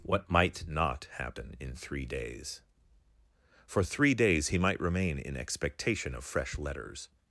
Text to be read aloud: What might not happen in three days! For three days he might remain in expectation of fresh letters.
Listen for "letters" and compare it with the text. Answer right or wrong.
right